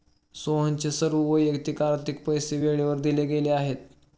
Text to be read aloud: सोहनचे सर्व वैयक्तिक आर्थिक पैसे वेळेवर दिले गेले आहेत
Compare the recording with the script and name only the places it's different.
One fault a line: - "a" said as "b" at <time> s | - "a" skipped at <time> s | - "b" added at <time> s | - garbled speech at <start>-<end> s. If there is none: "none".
none